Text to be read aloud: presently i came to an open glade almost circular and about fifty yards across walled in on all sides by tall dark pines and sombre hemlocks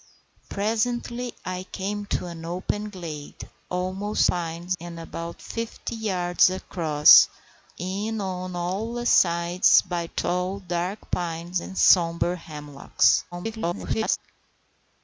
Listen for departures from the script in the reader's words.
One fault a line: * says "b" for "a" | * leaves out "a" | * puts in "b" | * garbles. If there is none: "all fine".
* says "pines" for "circular"
* leaves out "walled"
* garbles